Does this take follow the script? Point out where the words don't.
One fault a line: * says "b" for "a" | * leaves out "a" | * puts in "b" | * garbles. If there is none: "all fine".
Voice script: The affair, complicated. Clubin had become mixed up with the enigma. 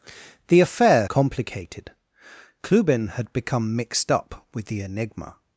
all fine